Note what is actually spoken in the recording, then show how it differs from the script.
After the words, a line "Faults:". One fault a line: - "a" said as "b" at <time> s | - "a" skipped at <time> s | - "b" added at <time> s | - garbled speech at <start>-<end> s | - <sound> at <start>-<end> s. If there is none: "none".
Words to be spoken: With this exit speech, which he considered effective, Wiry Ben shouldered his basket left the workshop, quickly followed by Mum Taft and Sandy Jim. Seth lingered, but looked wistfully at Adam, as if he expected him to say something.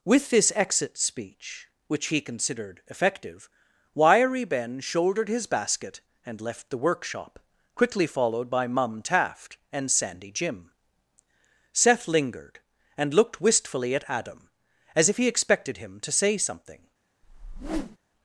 With this exit speech, which he considered effective, Wiry Ben shouldered his basket and left the workshop, quickly followed by Mum Taft and Sandy Jim. Seth lingered, and looked wistfully at Adam, as if he expected him to say something.
Faults:
- "and" added at 6.2 s
- "but" said as "and" at 13.0 s
- whoosh at 17.2-18.0 s